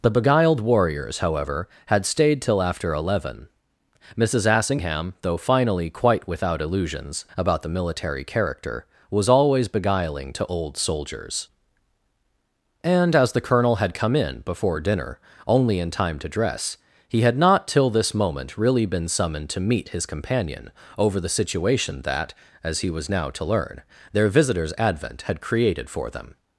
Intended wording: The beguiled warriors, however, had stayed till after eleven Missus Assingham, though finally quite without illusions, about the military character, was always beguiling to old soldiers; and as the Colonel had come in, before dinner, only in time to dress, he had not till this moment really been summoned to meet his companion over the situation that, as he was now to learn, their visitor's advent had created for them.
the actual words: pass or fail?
pass